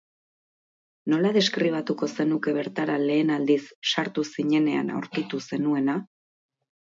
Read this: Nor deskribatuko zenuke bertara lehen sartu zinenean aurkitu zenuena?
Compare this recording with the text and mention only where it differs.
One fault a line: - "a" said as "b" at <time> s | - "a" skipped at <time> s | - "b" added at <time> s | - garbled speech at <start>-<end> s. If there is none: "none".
- "Nor" said as "Nola" at 1.1 s
- "aldiz" added at 3.4 s